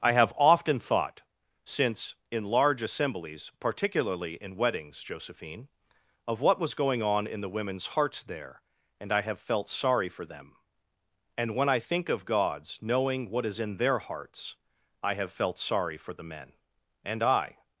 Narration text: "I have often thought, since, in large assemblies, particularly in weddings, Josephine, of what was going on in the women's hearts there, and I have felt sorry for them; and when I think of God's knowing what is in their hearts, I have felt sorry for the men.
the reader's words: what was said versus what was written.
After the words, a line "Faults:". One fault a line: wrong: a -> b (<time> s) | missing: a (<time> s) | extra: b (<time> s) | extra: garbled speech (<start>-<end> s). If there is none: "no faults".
"I have often thought, since, in large assemblies, particularly in weddings, Josephine, of what was going on in the women's hearts there, and I have felt sorry for them; and when I think of God's knowing what is in their hearts, I have felt sorry for the men. And I
Faults:
extra: And I (17.1 s)